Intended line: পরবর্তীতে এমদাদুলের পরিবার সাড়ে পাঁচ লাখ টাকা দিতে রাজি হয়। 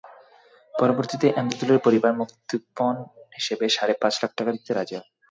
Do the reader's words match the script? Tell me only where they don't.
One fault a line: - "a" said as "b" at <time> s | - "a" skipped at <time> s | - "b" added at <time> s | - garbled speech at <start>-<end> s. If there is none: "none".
- "মুক্তিপণ হিসেবে" added at 2.1 s